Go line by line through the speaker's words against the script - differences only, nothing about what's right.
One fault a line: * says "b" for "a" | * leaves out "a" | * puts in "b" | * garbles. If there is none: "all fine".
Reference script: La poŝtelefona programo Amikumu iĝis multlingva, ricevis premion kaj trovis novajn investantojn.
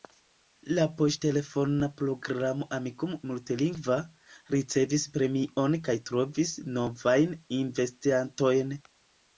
* leaves out "iĝis"